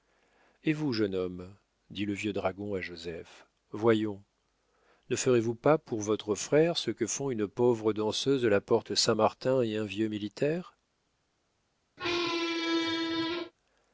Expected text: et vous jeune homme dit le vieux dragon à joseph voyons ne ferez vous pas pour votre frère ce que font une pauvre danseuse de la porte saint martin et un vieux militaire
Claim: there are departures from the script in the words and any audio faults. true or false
true